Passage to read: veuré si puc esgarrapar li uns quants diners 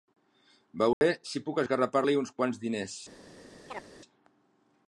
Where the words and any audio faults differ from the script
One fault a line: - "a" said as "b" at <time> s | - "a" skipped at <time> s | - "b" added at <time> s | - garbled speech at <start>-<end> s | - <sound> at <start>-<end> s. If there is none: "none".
- dropout at 0.9-1.0 s
- chirp at 3.7-3.9 s